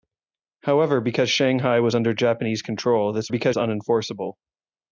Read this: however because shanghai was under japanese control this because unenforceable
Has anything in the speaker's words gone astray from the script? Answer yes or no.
no